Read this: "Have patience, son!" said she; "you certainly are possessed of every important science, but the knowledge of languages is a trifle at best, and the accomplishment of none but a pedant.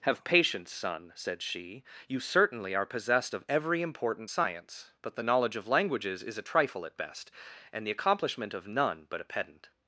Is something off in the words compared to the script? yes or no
no